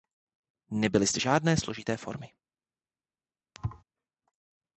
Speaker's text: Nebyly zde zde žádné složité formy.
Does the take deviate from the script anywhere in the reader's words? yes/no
yes